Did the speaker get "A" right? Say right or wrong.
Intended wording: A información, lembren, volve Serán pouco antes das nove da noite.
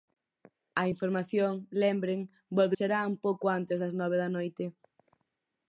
right